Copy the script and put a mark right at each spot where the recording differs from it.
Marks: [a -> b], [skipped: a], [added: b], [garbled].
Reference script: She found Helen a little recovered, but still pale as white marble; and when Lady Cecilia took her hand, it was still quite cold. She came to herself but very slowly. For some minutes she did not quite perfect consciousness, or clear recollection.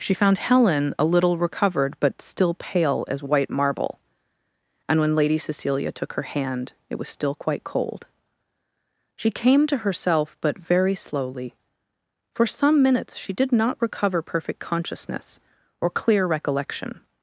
She found Helen a little recovered, but still pale as white marble; and when Lady Cecilia took her hand, it was still quite cold. She came to herself but very slowly. For some minutes she did not [quite -> recover] perfect consciousness, or clear recollection.